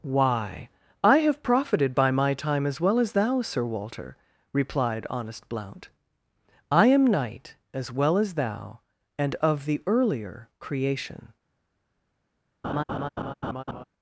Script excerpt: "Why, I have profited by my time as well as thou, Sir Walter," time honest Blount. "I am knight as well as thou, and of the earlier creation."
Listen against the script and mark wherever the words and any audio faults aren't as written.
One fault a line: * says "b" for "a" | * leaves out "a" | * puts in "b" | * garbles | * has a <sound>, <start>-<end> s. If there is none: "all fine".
* says "replied" for "time"
* has a laugh, 12.6-13.8 s